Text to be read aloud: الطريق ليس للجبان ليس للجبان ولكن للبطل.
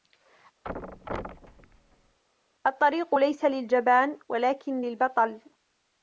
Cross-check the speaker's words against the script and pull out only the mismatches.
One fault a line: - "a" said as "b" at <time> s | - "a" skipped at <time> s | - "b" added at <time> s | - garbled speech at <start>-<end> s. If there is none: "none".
- "ليس للجبان" skipped at 4.2 s